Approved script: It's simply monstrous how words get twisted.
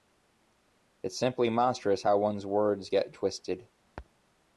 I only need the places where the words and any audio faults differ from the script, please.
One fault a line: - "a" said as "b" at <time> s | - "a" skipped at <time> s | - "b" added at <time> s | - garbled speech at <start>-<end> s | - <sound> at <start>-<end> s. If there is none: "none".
- "one's" added at 2.2 s